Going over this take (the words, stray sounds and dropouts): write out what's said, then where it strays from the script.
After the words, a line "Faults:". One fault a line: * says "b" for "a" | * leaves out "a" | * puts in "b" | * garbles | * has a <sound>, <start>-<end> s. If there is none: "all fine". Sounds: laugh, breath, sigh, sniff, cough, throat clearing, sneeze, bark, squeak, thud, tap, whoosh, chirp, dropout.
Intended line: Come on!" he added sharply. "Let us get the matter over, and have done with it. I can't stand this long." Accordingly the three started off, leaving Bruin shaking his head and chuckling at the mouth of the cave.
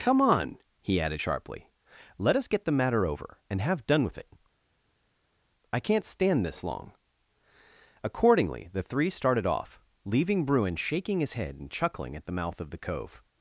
Come on!" he added sharply. "Let us get the matter over, and have done with it. I can't stand this long." Accordingly the three started off, leaving Bruin shaking his head and chuckling at the mouth of the cove.
Faults:
* says "cove" for "cave"